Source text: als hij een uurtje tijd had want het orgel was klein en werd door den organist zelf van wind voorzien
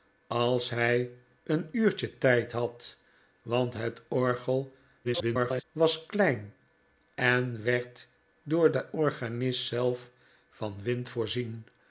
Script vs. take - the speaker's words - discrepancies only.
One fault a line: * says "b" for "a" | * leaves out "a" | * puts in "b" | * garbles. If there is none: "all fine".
* garbles